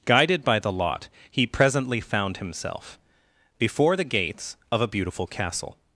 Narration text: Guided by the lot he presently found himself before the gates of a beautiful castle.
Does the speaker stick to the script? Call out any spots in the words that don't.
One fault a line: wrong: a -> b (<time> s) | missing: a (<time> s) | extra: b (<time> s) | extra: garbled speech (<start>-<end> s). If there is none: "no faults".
no faults